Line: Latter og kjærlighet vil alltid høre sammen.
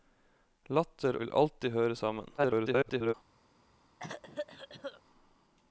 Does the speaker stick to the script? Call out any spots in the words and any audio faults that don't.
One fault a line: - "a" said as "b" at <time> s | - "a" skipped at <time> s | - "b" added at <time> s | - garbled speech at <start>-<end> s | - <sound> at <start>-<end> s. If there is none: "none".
- "og kjærlighet" skipped at 1.2 s
- garbled speech at 2.4-3.1 s
- cough at 4.0-5.0 s